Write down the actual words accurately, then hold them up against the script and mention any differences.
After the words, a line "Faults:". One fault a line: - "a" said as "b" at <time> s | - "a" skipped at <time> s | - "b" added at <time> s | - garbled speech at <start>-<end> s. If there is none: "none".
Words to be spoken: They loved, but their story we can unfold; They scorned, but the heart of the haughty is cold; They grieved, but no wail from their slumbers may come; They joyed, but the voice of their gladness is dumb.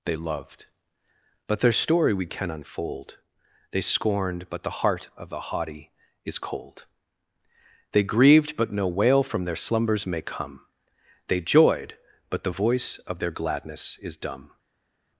They loved, but their story we can unfold; They scorned, but the heart of the haughty is cold; They grieved, but no wail from their slumbers may come; They joyed, but the voice of their gladness is dumb.
Faults:
none